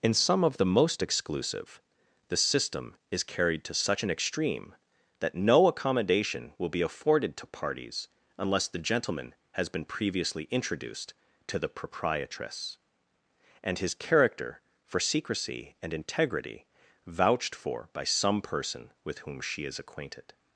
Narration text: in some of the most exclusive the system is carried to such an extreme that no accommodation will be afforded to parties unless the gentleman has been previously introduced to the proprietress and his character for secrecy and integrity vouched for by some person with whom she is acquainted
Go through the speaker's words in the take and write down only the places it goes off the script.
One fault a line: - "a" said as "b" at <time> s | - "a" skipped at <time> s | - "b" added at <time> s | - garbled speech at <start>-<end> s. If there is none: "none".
none